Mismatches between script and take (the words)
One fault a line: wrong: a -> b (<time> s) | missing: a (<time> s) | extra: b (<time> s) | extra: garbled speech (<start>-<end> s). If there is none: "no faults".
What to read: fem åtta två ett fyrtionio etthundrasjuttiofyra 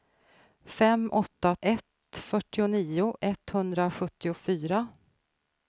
missing: två (1.6 s)